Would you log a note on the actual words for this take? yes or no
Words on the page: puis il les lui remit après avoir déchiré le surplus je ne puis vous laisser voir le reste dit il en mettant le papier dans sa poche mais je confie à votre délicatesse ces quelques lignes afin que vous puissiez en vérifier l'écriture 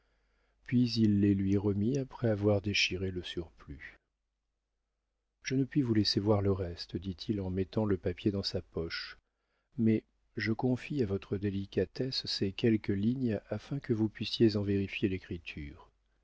no